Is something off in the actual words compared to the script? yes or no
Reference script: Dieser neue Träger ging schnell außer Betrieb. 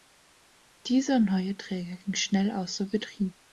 no